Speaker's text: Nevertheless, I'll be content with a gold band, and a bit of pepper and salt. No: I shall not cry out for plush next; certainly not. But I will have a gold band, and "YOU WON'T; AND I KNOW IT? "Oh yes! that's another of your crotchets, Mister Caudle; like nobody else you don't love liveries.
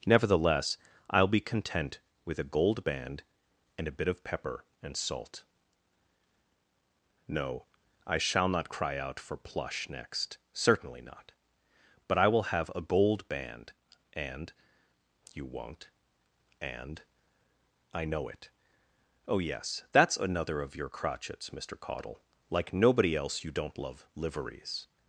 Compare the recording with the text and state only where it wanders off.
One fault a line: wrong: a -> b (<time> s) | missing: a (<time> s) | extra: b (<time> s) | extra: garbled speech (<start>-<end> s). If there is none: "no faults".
no faults